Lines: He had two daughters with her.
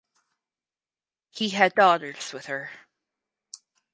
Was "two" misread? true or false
true